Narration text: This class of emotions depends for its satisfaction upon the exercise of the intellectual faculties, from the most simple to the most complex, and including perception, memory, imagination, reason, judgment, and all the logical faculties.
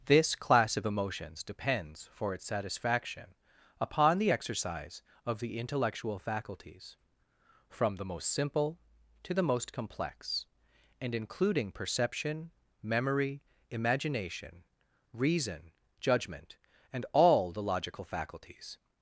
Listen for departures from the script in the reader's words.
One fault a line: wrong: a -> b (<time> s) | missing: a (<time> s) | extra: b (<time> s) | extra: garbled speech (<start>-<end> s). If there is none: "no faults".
no faults